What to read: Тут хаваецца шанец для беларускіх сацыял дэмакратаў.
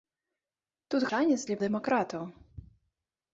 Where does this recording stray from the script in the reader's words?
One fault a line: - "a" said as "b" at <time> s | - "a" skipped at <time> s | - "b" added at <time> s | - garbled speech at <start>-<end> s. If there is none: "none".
- "хаваецца" skipped at 1.1 s
- "беларускіх сацыял" skipped at 1.6 s